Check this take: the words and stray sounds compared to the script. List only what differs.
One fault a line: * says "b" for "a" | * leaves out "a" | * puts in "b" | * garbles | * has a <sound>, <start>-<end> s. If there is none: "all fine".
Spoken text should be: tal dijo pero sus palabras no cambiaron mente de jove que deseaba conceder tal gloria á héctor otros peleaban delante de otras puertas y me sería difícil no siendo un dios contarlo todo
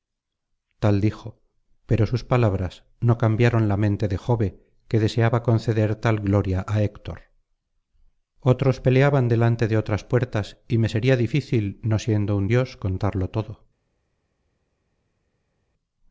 * puts in "la"